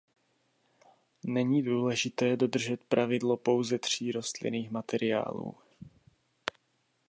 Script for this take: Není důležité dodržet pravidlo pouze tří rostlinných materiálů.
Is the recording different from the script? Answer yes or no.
no